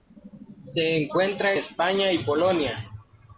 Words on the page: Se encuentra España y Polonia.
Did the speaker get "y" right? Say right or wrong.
right